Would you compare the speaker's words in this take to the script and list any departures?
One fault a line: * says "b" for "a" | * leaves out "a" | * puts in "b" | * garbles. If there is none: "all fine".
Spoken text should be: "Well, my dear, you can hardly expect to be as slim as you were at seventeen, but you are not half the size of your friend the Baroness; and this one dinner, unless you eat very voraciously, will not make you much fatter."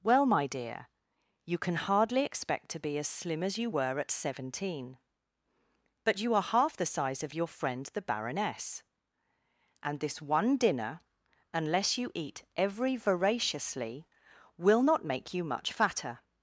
* leaves out "not"
* says "every" for "very"